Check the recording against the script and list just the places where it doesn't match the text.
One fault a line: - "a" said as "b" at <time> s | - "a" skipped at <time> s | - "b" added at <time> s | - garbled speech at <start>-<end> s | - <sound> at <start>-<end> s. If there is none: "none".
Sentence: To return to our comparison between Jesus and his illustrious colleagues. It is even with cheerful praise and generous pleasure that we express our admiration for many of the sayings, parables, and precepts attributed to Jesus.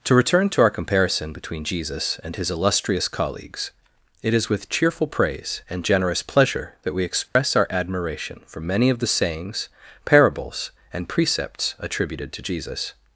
- "even" skipped at 4.5 s
- dropout at 7.3-7.4 s